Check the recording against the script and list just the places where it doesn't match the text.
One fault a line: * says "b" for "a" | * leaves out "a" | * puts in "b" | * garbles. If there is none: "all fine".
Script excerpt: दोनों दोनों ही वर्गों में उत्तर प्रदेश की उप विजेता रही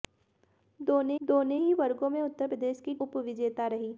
all fine